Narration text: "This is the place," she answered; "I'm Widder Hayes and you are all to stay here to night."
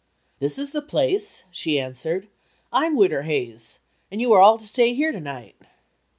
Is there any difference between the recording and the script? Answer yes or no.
no